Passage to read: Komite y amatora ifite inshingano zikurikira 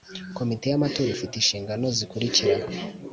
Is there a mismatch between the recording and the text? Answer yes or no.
no